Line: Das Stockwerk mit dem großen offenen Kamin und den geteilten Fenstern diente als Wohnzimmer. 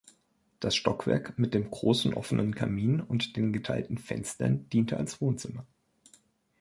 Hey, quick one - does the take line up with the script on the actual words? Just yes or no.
yes